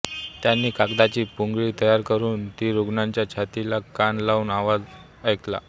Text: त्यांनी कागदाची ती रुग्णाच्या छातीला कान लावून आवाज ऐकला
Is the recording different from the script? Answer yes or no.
yes